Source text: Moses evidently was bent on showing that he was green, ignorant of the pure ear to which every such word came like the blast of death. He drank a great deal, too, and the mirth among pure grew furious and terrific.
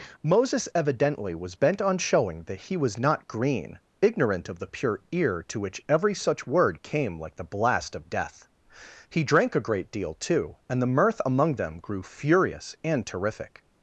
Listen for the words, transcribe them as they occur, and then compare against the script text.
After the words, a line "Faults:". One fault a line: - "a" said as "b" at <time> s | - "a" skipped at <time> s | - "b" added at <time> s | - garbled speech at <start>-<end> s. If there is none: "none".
Moses evidently was bent on showing that he was not green, ignorant of the pure ear to which every such word came like the blast of death. He drank a great deal, too, and the mirth among them grew furious and terrific.
Faults:
- "not" added at 3.0 s
- "pure" said as "them" at 11.6 s